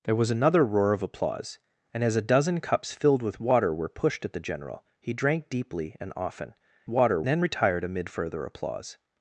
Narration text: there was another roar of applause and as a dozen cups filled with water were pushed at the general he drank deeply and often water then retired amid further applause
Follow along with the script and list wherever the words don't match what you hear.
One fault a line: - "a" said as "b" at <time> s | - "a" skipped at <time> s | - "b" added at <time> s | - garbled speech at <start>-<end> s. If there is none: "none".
none